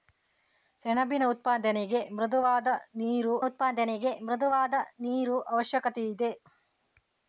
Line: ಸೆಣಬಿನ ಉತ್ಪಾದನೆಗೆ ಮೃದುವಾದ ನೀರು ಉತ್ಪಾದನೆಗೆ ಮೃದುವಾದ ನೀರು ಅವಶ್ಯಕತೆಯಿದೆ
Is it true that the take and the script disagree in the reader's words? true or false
false